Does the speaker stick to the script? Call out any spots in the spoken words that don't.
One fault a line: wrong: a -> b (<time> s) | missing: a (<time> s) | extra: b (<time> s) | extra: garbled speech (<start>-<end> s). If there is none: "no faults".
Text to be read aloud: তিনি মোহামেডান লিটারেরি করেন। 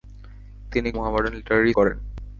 no faults